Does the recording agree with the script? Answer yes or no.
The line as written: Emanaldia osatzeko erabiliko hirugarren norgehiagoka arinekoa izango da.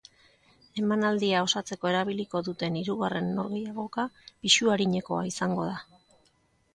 no